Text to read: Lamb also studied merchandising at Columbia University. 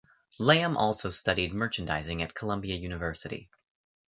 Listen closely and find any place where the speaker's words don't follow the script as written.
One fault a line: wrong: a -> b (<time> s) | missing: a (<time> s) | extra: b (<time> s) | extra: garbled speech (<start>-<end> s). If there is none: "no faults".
no faults